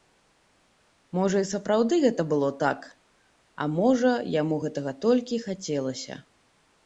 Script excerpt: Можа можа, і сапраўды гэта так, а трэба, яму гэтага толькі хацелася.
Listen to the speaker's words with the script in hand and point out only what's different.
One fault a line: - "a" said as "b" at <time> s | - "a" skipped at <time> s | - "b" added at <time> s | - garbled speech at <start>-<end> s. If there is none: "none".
- "можа" skipped at 1.4 s
- "было" added at 2.3 s
- "трэба" said as "можа" at 3.8 s